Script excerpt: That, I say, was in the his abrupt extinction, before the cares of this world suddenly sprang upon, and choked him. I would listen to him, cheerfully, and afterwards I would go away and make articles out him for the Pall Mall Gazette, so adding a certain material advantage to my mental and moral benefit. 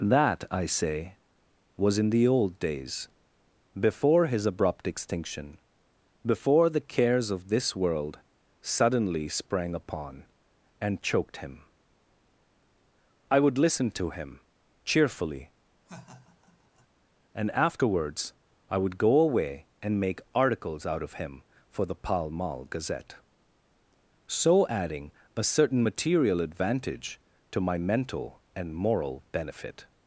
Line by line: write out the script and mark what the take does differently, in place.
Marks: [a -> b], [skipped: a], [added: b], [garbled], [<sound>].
That, I say, was in the [added: old days before] his abrupt extinction, before the cares of this world suddenly sprang upon, and choked him. I would listen to him, cheerfully, [laugh] and afterwards I would go away and make articles out [added: of] him for the Pall Mall Gazette, so adding a certain material advantage to my mental and moral benefit.